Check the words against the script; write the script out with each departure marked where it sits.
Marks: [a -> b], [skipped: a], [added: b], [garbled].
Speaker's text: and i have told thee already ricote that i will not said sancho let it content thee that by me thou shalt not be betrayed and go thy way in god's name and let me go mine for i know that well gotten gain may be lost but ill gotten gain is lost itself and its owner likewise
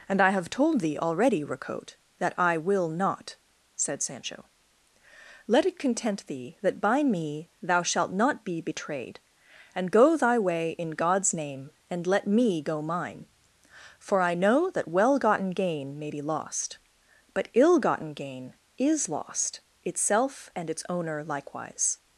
and i have told thee already ricote that i will not said sancho let it content thee that by me thou shalt not be betrayed and go thy way in god's name and let me go mine for i know that well gotten gain may be lost but ill gotten gain is lost itself and its owner likewise